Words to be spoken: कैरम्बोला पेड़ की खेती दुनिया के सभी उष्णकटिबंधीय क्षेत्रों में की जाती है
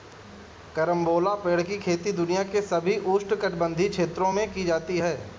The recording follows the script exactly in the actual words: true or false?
true